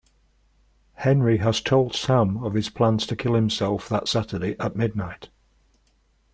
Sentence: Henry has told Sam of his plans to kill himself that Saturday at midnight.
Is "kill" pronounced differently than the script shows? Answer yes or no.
no